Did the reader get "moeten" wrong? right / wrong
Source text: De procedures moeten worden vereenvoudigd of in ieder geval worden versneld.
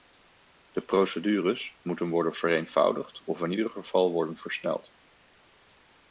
right